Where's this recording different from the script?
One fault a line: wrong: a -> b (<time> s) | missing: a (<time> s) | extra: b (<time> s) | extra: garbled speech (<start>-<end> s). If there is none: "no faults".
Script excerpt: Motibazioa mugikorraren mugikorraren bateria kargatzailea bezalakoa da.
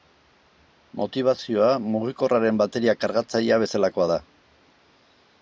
missing: mugikorraren (2.6 s)